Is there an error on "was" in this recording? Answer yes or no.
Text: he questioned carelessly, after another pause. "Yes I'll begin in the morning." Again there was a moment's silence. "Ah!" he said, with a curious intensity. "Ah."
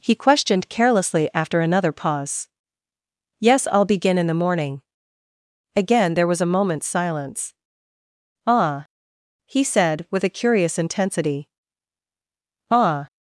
no